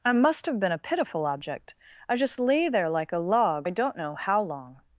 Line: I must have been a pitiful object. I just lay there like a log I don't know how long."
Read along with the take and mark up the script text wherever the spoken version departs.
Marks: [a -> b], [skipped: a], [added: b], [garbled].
I must have been a pitiful object. I just lay there like a log I don't know how long."